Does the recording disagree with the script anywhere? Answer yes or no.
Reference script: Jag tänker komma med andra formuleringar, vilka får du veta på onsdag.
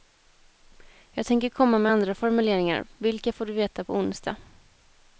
no